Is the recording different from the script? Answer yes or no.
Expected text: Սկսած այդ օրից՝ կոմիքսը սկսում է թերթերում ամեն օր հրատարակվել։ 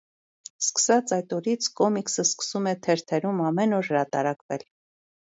no